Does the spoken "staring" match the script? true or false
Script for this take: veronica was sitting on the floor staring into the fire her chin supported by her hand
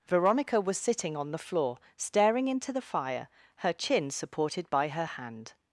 true